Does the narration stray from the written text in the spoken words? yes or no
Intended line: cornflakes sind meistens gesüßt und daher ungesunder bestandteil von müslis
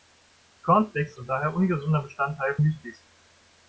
yes